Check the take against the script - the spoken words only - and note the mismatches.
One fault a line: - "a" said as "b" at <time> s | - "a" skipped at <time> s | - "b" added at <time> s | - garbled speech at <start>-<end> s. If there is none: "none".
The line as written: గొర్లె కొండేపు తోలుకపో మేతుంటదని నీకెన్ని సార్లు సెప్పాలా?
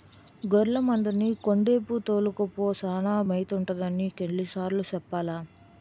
- "మందని" added at 0.8 s
- "సానా" added at 2.7 s